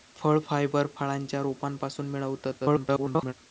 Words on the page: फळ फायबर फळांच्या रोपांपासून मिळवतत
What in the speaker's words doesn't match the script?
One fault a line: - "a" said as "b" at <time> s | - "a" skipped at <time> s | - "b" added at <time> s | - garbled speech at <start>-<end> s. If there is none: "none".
- garbled speech at 2.6-3.3 s